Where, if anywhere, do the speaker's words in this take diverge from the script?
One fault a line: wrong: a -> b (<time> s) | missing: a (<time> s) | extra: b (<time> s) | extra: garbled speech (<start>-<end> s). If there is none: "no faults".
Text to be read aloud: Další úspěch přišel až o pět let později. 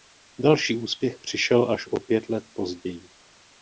no faults